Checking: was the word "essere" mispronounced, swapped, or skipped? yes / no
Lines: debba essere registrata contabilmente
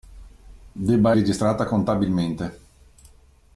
yes